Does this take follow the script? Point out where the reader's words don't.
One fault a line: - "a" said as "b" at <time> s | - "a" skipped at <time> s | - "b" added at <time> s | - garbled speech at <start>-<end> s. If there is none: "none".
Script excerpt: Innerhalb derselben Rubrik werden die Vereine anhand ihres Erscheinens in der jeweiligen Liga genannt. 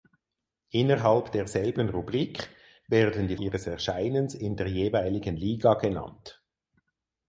- "Vereine anhand" skipped at 3.4 s